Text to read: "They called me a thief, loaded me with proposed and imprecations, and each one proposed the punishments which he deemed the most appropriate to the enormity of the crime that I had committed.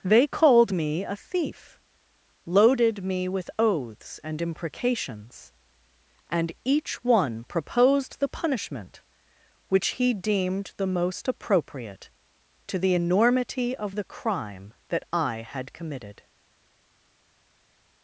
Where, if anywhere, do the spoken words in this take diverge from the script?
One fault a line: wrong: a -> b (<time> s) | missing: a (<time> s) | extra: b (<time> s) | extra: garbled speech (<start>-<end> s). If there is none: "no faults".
wrong: proposed -> oaths (3.6 s)
wrong: punishments -> punishment (8.3 s)